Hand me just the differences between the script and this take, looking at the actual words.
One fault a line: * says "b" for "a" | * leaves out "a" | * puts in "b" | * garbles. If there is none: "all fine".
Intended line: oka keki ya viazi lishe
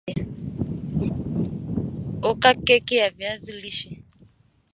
all fine